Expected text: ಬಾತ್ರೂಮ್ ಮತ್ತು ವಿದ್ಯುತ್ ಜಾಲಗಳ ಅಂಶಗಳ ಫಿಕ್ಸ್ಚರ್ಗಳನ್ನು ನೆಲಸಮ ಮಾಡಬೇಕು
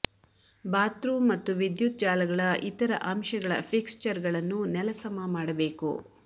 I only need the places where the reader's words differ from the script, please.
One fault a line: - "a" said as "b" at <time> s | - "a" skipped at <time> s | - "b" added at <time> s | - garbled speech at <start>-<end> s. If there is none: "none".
- "ಇತರ" added at 2.6 s